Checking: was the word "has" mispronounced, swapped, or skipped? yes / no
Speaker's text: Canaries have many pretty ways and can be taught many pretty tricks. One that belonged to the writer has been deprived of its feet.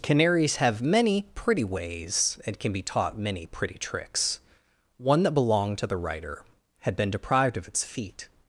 yes